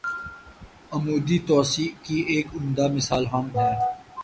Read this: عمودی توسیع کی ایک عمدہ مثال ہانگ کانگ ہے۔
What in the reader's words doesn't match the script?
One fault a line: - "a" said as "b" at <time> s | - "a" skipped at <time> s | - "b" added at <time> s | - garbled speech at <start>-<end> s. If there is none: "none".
- "کانگ" skipped at 3.5 s